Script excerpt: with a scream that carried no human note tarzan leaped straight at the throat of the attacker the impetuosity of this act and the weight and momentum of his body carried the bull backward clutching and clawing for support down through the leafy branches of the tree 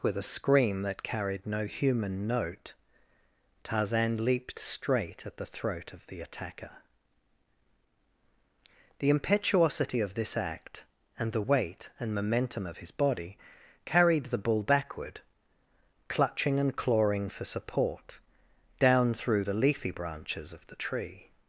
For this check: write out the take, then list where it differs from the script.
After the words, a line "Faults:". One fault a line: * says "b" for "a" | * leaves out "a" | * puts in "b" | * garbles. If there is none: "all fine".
with a scream that carried no human note tarzan leaped straight at the throat of the attacker the impetuosity of this act and the weight and momentum of his body carried the bull backward clutching and clawing for support down through the leafy branches of the tree
Faults:
all fine